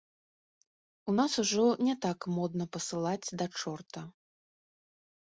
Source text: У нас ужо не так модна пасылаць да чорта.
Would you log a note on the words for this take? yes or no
no